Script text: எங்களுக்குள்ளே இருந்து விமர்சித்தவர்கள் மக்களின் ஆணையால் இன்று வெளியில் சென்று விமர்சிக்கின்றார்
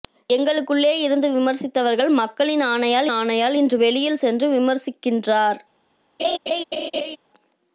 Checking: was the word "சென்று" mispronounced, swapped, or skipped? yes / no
no